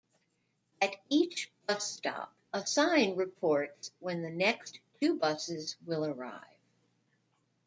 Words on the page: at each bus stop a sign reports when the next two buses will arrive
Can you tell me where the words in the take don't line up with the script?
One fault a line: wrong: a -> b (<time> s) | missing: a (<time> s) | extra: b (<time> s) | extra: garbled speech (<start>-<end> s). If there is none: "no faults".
no faults